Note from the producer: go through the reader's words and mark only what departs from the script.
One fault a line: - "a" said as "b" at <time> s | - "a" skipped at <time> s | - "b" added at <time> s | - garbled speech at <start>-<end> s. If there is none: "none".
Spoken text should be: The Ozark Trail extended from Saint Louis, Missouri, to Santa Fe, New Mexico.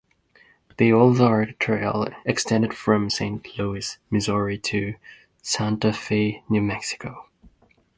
none